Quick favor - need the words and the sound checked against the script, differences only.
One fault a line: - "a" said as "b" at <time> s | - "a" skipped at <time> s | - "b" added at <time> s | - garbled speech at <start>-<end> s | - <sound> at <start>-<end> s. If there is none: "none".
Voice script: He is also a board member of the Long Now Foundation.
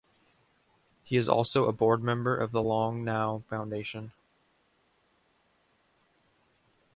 none